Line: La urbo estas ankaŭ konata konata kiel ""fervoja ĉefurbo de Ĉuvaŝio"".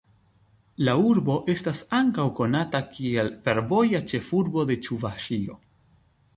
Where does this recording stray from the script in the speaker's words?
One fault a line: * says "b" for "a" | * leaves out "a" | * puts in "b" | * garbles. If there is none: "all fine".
* leaves out "konata"